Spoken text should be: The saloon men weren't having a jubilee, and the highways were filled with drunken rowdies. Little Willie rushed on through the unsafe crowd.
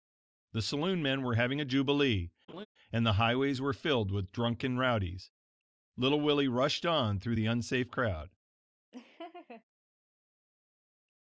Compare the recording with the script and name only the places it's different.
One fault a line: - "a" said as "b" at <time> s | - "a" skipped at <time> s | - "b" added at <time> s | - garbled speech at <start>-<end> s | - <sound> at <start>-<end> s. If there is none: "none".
- "weren't" said as "were" at 1.2 s
- laugh at 2.5-2.7 s
- laugh at 8.9-9.6 s